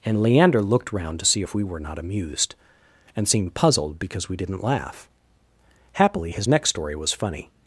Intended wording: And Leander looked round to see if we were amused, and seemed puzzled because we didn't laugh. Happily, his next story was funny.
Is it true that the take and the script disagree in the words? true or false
true